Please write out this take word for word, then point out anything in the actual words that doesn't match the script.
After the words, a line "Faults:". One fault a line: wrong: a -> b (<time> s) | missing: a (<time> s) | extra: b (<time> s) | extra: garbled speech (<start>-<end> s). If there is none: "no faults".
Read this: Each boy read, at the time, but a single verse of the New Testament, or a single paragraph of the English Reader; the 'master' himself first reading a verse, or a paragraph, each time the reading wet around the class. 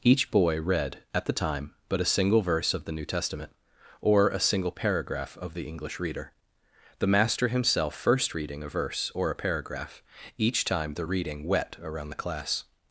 Each boy read, at the time, but a single verse of the New Testament, or a single paragraph of the English Reader; the 'master' himself first reading a verse, or a paragraph, each time the reading wet around the class.
Faults:
no faults